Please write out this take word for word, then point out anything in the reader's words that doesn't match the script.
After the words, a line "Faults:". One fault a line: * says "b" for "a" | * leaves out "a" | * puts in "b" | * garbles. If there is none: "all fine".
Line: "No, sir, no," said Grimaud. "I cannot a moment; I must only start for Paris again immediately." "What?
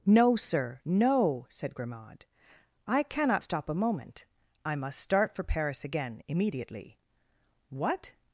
"No, sir, no," said Grimaud. "I cannot stop a moment; I must start for Paris again immediately." "What?
Faults:
* puts in "stop"
* leaves out "only"